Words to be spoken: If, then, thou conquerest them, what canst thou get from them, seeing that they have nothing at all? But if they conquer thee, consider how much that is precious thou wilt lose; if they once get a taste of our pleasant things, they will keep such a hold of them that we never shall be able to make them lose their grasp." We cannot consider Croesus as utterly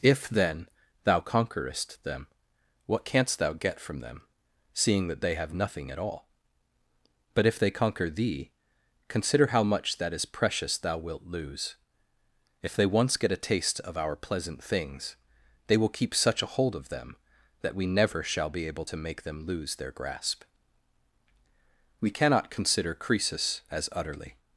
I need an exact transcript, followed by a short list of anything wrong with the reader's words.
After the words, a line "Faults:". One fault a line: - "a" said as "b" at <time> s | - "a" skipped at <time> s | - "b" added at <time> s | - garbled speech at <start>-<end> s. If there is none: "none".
If, then, thou conquerest them, what canst thou get from them, seeing that they have nothing at all? But if they conquer thee, consider how much that is precious thou wilt lose; if they once get a taste of our pleasant things, they will keep such a hold of them that we never shall be able to make them lose their grasp." We cannot consider Croesus as utterly
Faults:
none